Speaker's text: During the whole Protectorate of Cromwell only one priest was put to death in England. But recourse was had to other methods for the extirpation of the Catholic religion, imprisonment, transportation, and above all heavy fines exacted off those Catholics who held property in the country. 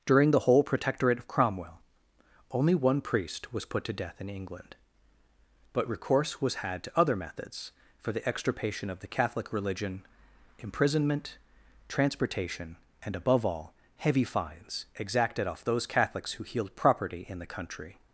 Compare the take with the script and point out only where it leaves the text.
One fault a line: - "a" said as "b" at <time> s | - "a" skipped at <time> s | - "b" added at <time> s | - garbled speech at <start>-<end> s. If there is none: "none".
- "held" said as "healed" at 16.4 s